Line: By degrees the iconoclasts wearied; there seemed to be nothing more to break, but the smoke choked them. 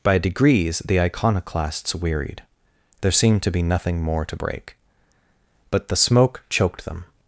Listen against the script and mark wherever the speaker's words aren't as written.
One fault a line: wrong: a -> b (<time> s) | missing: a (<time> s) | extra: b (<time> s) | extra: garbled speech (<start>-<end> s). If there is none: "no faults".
no faults